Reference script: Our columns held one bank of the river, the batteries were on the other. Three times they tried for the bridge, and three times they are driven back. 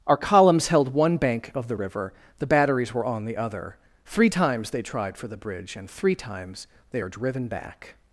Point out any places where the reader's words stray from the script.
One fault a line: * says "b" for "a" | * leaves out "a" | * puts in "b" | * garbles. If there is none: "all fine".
all fine